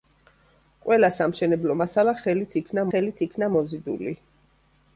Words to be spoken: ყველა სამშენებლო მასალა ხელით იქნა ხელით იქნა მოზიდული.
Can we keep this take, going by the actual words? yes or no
yes